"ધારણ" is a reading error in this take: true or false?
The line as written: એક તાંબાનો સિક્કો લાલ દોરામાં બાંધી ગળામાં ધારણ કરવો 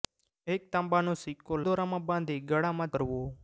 true